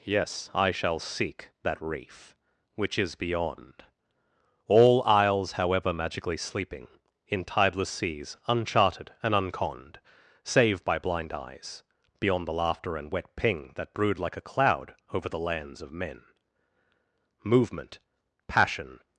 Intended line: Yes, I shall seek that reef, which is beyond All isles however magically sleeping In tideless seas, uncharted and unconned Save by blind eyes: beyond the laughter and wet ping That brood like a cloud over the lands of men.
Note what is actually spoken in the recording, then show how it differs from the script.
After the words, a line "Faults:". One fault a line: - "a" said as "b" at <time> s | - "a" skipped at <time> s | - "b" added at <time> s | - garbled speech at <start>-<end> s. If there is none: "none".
Yes, I shall seek that reef, which is beyond All isles however magically sleeping In tideless seas, uncharted and unconned Save by blind eyes: beyond the laughter and wet ping That brood like a cloud over the lands of men. Movement, passion
Faults:
- "Movement passion" added at 17.4 s